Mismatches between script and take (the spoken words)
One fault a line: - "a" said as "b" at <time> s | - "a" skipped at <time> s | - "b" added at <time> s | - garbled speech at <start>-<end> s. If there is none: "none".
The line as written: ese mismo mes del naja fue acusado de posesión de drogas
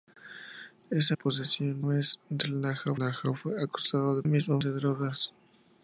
- "mismo" said as "posesión" at 1.1 s
- "naja" added at 2.9 s
- "posesión" said as "mismo" at 4.2 s